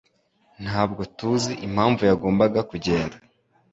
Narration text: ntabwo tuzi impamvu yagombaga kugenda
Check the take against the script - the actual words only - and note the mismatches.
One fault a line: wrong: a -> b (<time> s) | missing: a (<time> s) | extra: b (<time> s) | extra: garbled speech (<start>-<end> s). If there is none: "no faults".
no faults